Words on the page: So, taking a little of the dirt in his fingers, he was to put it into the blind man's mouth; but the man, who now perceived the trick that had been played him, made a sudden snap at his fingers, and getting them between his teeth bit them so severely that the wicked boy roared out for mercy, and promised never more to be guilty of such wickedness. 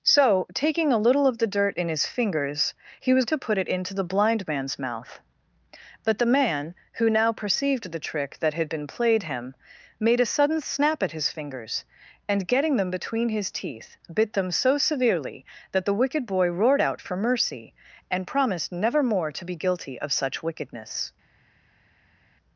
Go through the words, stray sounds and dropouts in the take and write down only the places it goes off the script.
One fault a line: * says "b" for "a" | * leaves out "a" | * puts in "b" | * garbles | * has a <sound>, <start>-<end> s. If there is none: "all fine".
all fine